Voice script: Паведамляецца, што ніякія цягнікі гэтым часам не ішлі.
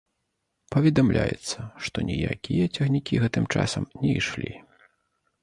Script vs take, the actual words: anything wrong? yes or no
no